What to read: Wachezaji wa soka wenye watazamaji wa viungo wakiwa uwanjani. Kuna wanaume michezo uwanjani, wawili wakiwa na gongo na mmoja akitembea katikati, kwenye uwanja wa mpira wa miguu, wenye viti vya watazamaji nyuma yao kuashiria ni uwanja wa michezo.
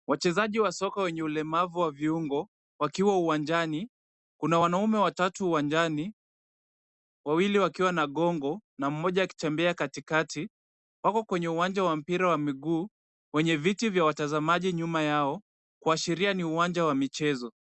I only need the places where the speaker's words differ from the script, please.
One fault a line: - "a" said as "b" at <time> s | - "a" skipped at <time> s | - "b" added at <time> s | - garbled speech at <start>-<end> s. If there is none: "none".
- "watazamaji" said as "ulemavu" at 1.2 s
- "michezo" said as "watatu" at 5.0 s
- "wako" added at 11.0 s